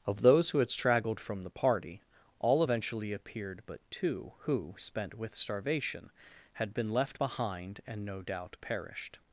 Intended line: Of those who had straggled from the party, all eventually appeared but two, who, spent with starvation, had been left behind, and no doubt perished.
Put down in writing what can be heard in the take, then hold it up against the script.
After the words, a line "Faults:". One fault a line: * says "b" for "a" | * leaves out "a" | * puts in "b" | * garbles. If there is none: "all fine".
Of those who had straggled from the party, all eventually appeared but two, who, spent with starvation, had been left behind, and no doubt perished.
Faults:
all fine